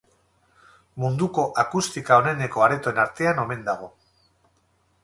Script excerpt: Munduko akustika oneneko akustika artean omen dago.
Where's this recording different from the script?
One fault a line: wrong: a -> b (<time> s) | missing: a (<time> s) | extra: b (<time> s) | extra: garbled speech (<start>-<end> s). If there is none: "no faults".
wrong: akustika -> aretoen (2.7 s)